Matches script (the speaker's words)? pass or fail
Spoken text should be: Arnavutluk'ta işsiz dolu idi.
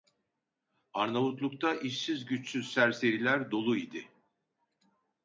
fail